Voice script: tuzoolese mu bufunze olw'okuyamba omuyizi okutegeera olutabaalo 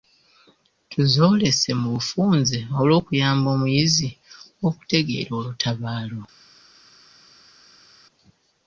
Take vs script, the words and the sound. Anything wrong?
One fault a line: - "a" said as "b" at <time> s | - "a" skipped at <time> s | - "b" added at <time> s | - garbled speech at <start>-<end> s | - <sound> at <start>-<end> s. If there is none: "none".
none